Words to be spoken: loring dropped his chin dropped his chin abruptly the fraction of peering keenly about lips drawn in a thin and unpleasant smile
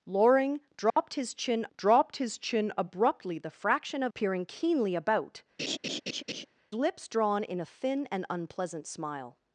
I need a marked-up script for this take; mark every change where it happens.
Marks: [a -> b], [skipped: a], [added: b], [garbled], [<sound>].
loring dropped [dropout] his chin dropped his chin abruptly the fraction of peering keenly about [laugh] lips drawn in a thin and unpleasant smile